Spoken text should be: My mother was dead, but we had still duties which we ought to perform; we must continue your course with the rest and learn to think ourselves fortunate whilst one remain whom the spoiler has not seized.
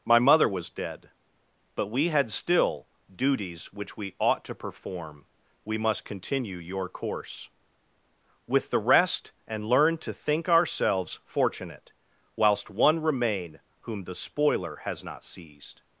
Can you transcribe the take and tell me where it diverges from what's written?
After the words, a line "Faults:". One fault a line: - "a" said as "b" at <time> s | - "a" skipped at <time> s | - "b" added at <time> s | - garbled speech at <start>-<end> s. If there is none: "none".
My mother was dead, but we had still duties which we ought to perform; we must continue your course with the rest and learn to think ourselves fortunate whilst one remain whom the spoiler has not seized.
Faults:
none